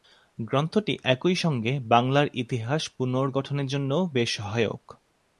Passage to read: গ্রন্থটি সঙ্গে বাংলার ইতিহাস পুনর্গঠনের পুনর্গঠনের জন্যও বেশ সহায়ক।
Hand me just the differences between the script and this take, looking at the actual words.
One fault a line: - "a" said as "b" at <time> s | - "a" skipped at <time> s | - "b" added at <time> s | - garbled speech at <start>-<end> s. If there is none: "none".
- "একই" added at 1.1 s
- "পুনর্গঠনের" skipped at 3.7 s